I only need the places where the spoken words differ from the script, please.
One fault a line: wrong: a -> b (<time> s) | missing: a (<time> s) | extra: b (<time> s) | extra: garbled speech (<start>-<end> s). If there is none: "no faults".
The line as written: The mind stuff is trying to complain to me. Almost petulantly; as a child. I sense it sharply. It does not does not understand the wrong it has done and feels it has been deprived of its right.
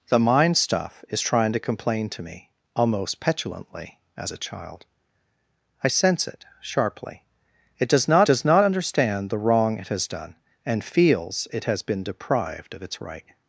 no faults